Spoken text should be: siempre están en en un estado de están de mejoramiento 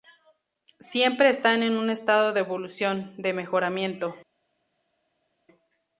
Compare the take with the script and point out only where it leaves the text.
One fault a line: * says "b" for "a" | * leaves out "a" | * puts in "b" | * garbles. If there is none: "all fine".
* leaves out "en"
* says "evolución" for "están"